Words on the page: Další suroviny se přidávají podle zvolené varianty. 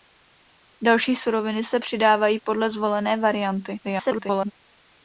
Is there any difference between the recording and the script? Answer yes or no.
yes